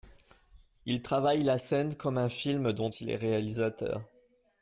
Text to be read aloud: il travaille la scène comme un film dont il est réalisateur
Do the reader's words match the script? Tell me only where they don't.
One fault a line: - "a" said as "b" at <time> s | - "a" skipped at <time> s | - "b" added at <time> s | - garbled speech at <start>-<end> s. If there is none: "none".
none